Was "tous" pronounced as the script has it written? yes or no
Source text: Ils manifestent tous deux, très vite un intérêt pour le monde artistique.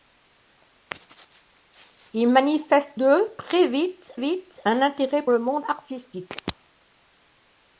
no